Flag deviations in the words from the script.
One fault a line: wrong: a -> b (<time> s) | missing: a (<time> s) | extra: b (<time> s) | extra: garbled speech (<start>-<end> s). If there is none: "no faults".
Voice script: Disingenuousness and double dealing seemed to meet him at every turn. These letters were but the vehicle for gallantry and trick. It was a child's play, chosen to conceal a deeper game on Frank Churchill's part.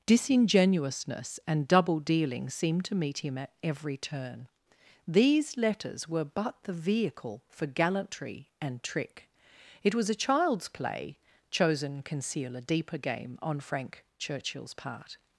missing: to (12.0 s)